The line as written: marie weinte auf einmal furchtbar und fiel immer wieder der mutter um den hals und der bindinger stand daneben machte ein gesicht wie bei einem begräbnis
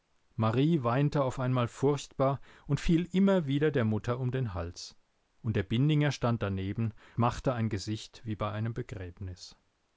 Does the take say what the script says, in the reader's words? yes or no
yes